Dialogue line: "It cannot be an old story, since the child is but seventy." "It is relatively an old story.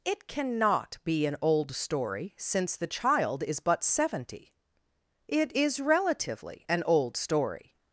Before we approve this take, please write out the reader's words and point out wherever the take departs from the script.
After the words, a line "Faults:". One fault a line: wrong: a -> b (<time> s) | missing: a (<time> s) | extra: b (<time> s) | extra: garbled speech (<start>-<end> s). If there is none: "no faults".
"It cannot be an old story, since the child is but seventy." "It is relatively an old story.
Faults:
no faults